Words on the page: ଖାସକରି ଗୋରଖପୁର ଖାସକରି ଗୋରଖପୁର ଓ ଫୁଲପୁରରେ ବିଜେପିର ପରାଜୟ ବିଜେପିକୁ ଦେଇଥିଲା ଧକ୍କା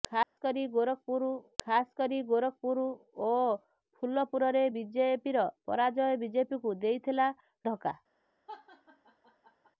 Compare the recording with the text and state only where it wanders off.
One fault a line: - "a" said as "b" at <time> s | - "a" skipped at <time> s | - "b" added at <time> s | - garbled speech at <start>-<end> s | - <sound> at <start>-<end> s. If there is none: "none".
- dropout at 0.2-0.4 s
- laugh at 8.5-9.7 s